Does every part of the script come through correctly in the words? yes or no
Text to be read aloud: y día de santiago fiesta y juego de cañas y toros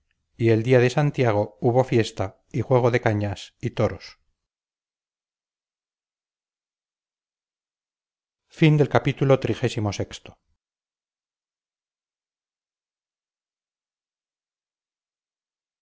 no